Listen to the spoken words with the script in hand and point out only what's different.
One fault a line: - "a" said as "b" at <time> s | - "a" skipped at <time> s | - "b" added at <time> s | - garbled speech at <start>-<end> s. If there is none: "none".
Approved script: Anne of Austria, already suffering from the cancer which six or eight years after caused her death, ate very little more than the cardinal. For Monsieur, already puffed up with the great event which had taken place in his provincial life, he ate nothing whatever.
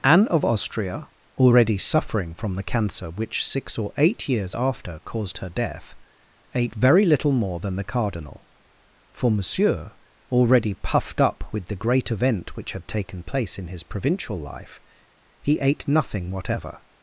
none